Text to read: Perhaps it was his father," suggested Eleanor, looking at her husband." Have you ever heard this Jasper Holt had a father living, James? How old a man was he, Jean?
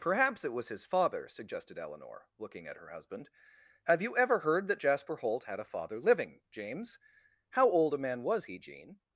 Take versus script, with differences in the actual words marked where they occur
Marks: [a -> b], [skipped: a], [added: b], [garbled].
Perhaps it was his father," suggested Eleanor, looking at her husband." Have you ever heard [this -> that] Jasper Holt had a father living, James? How old a man was he, Jean?